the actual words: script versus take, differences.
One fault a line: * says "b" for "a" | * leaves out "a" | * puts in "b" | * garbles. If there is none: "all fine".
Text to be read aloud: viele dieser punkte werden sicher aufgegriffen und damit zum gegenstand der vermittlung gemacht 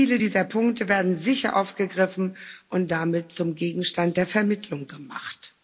all fine